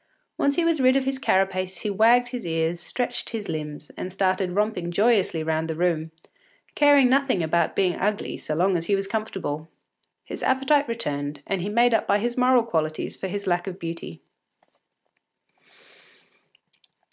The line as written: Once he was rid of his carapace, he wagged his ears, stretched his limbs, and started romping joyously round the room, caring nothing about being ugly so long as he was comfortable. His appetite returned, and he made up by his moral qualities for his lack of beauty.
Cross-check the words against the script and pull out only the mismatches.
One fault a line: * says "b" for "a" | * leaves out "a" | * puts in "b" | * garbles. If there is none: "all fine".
all fine